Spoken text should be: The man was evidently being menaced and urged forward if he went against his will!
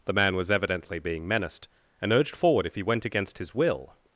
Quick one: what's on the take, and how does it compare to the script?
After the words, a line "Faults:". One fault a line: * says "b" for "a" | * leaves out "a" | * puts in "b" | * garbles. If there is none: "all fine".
The man was evidently being menaced and urged forward if he went against his will!
Faults:
all fine